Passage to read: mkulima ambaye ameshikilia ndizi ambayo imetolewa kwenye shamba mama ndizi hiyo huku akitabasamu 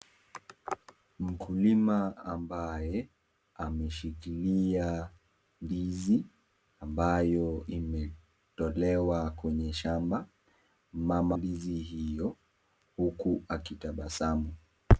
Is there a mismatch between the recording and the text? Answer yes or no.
no